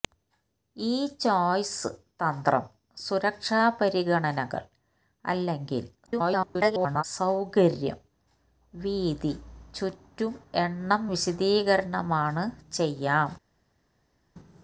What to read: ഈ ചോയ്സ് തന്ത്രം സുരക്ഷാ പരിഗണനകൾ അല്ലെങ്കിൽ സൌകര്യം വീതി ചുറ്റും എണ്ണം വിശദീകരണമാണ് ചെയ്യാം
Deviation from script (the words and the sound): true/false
true